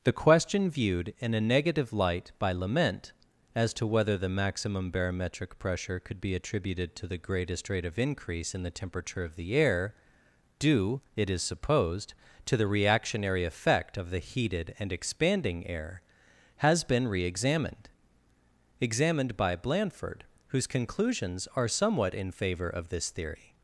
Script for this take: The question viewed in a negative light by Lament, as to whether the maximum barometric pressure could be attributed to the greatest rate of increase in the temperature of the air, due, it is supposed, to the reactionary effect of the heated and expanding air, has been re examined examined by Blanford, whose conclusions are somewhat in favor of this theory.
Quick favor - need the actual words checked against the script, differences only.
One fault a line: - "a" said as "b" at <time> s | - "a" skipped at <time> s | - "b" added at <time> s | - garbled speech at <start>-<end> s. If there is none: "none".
none